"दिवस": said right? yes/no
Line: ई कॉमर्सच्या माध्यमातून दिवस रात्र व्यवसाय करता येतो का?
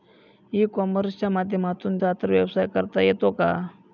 no